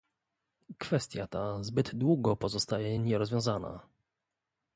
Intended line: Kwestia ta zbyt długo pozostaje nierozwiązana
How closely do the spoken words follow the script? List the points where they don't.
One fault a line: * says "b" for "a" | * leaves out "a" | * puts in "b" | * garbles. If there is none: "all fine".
all fine